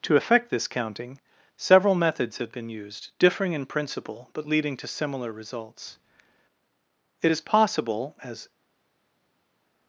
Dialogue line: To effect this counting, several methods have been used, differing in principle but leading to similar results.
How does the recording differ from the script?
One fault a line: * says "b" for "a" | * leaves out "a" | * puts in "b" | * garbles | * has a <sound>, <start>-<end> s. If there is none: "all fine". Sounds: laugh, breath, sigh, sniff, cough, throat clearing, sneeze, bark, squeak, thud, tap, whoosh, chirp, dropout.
* puts in "It is possible as"